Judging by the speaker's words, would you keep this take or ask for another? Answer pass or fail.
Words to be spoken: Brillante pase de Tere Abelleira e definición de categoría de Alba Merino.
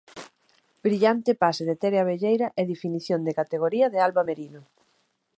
pass